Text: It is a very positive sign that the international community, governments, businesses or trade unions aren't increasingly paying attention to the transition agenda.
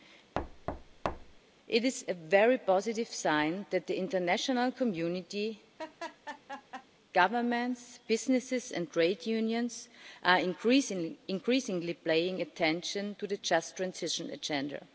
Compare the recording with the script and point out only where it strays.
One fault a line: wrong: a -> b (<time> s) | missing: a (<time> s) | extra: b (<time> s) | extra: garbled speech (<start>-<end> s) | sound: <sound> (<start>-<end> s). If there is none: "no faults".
sound: thud (0.3-1.4 s)
sound: laugh (5.8-6.9 s)
wrong: or -> and (8.7 s)
wrong: aren't -> are (10.2 s)
extra: just (13.4 s)